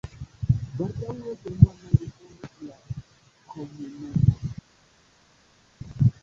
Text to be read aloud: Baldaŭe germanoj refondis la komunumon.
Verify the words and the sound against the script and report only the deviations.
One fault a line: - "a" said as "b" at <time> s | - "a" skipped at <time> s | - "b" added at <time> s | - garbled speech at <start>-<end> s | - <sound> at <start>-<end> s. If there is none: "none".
none